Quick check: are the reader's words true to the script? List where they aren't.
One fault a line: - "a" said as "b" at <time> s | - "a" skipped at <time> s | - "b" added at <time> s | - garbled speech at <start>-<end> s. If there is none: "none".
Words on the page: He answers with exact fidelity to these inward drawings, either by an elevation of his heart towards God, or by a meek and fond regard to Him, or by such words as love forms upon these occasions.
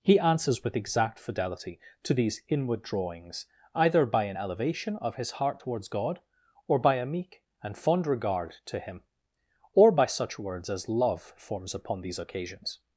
none